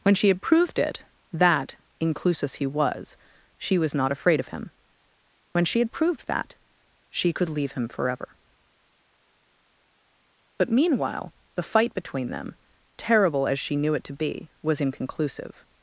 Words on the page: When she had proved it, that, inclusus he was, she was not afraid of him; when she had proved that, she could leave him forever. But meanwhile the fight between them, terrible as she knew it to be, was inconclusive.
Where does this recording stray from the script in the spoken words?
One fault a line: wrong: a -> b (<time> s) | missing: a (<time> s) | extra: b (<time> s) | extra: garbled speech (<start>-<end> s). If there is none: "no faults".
no faults